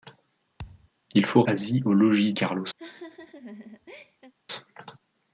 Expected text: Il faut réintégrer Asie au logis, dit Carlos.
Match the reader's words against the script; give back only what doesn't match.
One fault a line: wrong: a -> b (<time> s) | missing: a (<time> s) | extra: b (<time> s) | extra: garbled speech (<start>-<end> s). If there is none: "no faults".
missing: réintégrer (1.4 s)
missing: dit (2.3 s)